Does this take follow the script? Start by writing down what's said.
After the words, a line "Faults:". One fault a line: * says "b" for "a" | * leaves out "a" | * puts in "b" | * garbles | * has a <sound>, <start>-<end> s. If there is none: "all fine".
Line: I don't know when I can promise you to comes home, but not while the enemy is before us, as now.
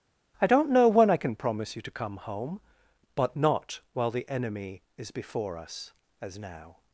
I don't know when I can promise you to come home, but not while the enemy is before us, as now.
Faults:
* says "come" for "comes"